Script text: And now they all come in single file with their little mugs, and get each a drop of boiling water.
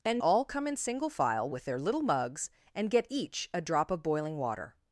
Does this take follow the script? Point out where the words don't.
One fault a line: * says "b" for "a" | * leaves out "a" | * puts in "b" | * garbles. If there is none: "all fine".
* leaves out "now they"